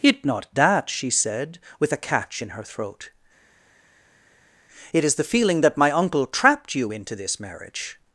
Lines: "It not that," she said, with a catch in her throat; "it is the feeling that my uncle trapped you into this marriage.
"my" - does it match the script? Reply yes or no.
yes